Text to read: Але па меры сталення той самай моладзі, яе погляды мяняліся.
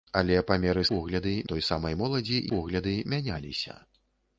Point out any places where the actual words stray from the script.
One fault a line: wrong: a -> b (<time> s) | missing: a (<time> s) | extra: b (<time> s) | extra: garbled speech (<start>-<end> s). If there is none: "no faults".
wrong: сталення -> погляды (0.9 s)
missing: яе (2.4 s)